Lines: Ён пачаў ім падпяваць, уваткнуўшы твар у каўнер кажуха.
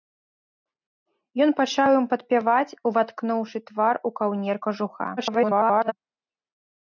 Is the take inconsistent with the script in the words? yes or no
yes